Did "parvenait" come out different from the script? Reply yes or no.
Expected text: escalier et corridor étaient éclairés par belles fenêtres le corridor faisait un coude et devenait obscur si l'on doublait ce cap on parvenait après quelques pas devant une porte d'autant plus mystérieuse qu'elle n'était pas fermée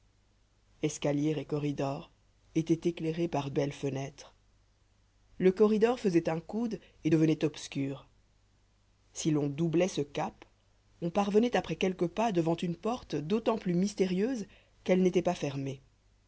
no